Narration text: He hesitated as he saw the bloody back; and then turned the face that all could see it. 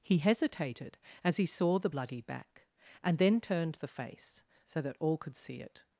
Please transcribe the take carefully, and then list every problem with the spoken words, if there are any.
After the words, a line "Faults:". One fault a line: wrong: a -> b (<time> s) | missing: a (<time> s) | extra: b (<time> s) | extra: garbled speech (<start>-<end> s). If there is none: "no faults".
He hesitated as he saw the bloody back; and then turned the face so that all could see it.
Faults:
extra: so (4.7 s)